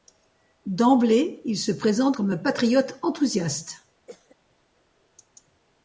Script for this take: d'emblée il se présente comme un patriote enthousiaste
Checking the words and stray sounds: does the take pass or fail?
fail